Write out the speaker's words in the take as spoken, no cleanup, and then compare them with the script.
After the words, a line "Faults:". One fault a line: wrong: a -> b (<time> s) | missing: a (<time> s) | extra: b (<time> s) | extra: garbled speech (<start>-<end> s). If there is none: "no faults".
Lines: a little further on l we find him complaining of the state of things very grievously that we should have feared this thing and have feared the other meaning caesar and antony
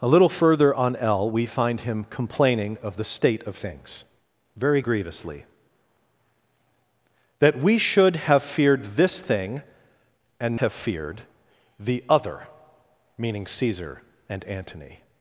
a little further on l we find him complaining of the state of things very grievously that we should have feared this thing and have feared the other meaning caesar and antony
Faults:
no faults